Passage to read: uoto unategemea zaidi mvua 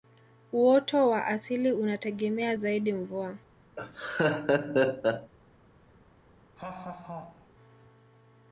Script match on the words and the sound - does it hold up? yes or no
no